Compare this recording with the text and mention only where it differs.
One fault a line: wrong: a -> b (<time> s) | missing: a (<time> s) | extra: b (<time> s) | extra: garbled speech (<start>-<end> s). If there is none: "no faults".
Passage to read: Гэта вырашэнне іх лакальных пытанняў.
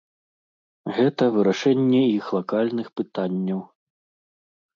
no faults